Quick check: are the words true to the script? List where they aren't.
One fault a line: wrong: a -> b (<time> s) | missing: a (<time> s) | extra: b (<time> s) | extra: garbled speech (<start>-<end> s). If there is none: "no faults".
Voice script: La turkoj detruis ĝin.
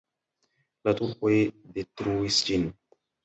no faults